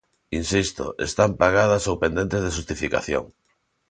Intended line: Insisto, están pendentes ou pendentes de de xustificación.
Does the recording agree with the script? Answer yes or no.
no